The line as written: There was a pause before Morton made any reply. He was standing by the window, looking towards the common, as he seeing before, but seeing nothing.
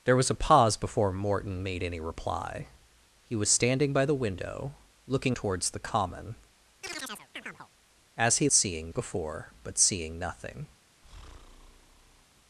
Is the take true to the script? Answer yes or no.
yes